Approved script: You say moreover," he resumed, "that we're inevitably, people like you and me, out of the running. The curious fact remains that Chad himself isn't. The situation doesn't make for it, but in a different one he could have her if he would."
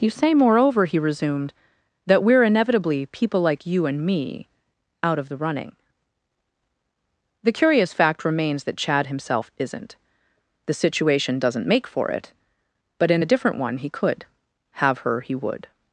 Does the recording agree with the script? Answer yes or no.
no